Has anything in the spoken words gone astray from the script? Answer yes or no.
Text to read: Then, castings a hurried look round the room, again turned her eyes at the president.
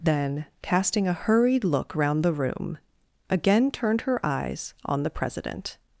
yes